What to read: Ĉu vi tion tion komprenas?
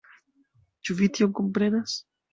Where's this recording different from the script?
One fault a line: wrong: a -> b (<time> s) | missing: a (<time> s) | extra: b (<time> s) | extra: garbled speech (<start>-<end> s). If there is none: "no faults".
missing: tion (1.4 s)